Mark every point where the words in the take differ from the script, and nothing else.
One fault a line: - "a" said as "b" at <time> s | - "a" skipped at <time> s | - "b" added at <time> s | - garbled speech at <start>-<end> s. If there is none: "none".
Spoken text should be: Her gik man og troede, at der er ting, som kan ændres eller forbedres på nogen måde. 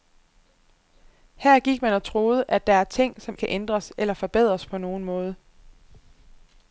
none